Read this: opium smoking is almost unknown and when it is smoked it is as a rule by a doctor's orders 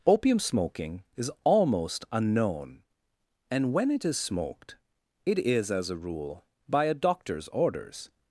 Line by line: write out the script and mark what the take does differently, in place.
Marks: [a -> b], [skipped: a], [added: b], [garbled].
opium smoking is almost unknown and when it is smoked it is as a rule by a doctor's orders